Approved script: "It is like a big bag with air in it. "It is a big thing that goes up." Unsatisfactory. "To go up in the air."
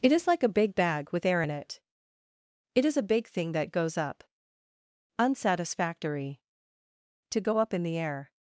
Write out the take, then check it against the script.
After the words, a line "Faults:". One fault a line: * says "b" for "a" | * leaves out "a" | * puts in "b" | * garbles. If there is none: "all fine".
"It is like a big bag with air in it. "It is a big thing that goes up." Unsatisfactory. "To go up in the air."
Faults:
all fine